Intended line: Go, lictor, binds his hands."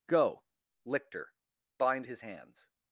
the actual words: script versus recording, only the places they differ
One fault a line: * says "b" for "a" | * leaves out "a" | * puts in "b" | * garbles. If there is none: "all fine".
* says "bind" for "binds"